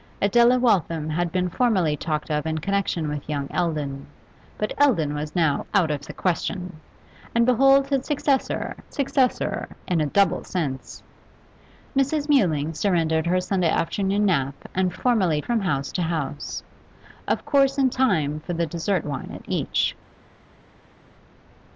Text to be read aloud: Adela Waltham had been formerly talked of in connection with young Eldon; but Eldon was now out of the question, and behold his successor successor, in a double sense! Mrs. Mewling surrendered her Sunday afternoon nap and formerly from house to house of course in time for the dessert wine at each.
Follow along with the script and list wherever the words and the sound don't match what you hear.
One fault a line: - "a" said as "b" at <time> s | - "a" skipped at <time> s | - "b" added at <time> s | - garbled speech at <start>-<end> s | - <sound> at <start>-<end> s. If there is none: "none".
none